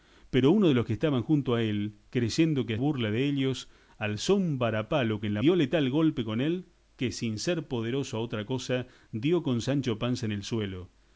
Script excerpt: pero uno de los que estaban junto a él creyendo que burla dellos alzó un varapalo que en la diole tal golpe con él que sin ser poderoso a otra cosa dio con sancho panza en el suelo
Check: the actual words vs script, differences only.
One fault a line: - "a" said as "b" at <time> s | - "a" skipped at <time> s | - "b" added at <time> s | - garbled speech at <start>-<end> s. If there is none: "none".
none